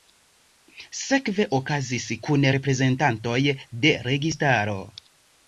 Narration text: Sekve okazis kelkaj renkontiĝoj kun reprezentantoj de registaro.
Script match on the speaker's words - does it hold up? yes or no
no